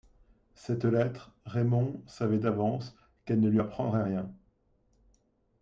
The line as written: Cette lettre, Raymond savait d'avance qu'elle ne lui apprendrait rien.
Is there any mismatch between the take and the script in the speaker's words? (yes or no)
no